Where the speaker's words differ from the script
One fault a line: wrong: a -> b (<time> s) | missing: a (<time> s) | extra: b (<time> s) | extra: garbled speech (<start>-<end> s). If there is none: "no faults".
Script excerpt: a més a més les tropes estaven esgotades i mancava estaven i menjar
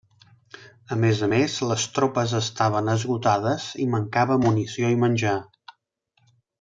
wrong: estaven -> munició (4.4 s)